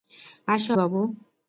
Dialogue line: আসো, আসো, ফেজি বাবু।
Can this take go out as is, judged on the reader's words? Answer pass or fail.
fail